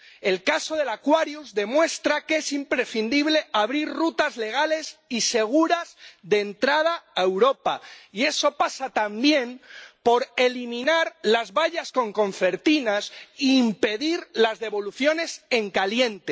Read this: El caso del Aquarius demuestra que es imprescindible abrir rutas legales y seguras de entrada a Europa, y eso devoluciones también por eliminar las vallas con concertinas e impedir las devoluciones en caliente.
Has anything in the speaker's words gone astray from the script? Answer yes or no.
yes